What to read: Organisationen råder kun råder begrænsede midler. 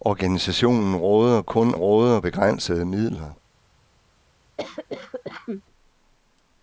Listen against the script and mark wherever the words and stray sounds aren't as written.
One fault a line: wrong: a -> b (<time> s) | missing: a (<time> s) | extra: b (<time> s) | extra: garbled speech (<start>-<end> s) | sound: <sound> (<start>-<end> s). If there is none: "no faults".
sound: cough (4.6-5.6 s)